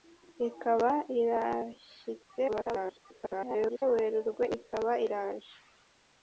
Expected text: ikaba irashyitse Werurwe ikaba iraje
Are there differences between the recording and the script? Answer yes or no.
yes